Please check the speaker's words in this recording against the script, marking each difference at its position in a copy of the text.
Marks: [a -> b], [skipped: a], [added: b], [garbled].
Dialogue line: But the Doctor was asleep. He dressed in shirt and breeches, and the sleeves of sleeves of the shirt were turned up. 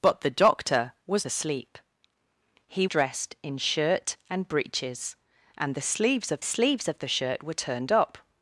But the Doctor was asleep. He dressed in shirt and breeches, and the sleeves of sleeves of the shirt were turned up.